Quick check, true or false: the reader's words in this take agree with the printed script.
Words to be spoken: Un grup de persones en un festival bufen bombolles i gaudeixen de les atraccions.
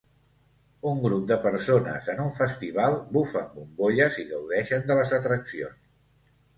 true